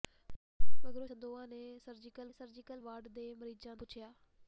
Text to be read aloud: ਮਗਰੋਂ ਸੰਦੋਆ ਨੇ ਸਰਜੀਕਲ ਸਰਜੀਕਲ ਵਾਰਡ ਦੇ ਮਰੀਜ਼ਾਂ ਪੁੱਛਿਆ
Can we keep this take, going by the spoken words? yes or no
yes